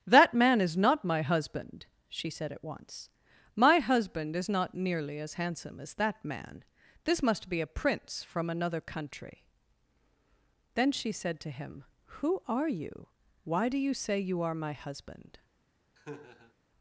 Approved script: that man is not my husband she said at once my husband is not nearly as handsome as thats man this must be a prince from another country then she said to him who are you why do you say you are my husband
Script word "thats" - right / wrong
wrong